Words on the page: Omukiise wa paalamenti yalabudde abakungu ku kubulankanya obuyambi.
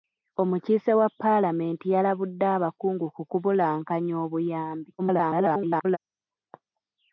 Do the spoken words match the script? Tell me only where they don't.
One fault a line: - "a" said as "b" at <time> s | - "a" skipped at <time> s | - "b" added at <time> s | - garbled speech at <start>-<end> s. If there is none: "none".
- garbled speech at 5.0-6.0 s